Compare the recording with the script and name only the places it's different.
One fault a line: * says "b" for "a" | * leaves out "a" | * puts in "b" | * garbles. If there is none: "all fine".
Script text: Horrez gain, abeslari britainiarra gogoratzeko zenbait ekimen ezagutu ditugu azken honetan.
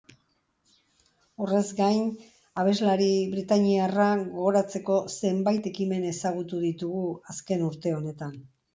* puts in "urte"